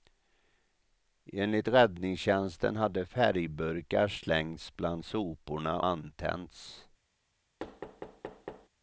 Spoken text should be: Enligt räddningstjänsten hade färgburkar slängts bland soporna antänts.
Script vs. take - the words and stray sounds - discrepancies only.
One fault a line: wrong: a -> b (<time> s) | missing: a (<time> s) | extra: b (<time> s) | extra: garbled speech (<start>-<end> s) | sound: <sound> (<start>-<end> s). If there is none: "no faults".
sound: thud (7.6-8.7 s)